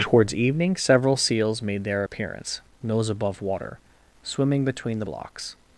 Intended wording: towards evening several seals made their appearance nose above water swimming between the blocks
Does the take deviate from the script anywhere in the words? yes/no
no